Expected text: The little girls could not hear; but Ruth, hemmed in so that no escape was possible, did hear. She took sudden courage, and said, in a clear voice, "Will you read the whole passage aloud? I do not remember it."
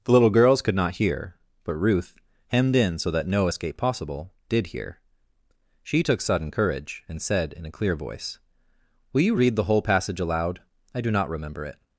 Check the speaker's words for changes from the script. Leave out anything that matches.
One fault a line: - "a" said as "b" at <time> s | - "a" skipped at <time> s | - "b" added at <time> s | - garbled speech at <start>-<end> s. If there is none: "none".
- "was" skipped at 3.8 s